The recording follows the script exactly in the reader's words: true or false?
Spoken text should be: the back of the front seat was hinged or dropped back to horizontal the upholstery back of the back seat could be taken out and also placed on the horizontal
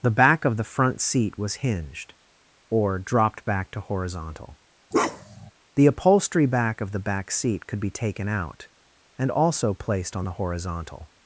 true